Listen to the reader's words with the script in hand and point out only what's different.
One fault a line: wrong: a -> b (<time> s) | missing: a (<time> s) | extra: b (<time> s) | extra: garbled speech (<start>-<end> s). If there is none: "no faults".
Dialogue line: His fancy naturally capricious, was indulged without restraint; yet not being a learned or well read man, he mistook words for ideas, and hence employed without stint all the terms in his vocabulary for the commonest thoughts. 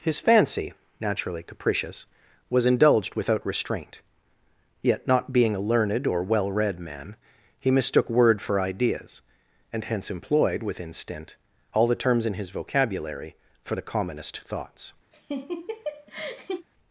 wrong: words -> word (8.1 s)
wrong: without -> within (10.6 s)